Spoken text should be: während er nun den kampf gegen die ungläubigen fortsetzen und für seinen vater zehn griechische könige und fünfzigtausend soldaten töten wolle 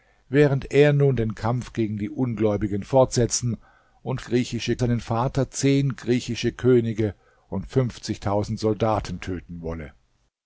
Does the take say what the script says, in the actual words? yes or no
no